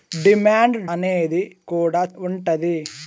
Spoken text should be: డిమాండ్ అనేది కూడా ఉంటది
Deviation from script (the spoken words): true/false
false